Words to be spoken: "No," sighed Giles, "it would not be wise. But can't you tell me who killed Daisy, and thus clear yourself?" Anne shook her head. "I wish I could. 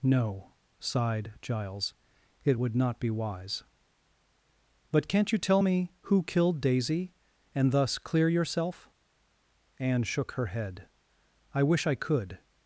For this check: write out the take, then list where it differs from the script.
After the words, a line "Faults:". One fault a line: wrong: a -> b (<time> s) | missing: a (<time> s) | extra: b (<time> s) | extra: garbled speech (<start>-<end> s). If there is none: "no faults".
"No," sighed Giles, "it would not be wise. But can't you tell me who killed Daisy, and thus clear yourself?" Anne shook her head. "I wish I could.
Faults:
no faults